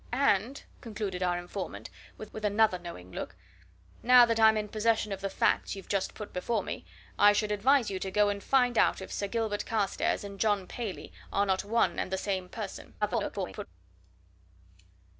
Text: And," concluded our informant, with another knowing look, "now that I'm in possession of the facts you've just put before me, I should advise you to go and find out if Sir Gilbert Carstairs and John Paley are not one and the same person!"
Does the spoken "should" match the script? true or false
true